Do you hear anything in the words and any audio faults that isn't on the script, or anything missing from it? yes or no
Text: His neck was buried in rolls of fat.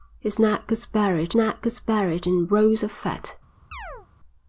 yes